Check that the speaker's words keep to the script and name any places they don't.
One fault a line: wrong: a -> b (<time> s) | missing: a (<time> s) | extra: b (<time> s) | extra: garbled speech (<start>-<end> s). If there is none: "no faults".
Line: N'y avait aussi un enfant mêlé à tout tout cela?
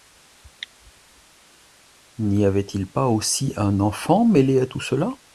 extra: il pas (2.6 s)
missing: tout (4.8 s)